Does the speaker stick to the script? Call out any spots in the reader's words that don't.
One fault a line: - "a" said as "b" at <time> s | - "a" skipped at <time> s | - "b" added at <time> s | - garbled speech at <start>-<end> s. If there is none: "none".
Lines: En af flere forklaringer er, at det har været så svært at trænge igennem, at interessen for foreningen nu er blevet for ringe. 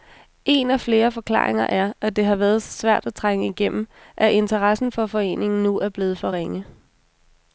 none